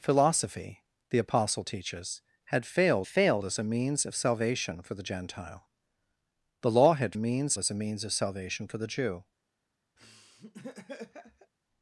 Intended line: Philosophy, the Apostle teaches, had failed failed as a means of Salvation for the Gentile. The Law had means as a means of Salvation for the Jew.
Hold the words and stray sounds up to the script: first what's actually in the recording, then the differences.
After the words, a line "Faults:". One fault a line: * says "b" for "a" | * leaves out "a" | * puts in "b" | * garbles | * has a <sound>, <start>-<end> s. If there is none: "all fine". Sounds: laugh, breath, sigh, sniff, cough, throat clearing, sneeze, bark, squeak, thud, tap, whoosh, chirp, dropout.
Philosophy, the Apostle teaches, had failed failed as a means of Salvation for the Gentile. The Law had means as a means of Salvation for the Jew.
Faults:
* has a laugh, 10.0-11.5 s